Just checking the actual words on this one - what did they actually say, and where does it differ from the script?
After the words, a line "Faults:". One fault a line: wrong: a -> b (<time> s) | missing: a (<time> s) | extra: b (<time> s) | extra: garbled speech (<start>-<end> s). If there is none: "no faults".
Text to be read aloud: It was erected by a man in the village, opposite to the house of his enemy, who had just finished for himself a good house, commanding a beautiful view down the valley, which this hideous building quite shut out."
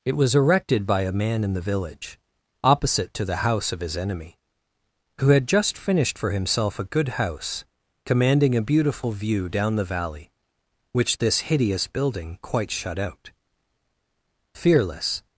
It was erected by a man in the village, opposite to the house of his enemy, who had just finished for himself a good house, commanding a beautiful view down the valley, which this hideous building quite shut out." Fearless
Faults:
extra: Fearless (14.5 s)